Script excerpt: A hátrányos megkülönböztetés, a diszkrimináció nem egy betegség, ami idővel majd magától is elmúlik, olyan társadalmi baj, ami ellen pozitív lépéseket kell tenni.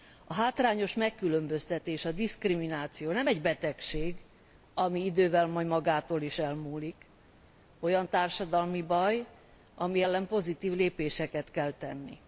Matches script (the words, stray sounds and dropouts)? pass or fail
pass